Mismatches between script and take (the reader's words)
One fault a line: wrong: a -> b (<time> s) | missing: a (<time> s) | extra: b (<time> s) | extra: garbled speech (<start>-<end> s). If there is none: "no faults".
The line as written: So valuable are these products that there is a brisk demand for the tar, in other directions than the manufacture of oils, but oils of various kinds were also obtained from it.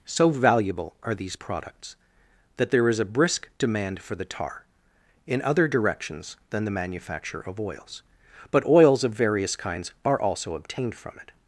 wrong: were -> are (10.0 s)